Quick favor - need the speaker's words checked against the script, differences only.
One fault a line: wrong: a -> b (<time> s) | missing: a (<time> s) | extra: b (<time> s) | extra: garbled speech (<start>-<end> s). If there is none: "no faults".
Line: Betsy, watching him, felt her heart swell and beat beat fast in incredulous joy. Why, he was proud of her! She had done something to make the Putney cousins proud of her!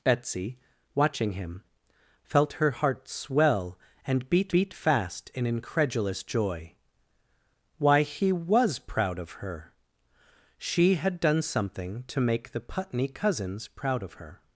no faults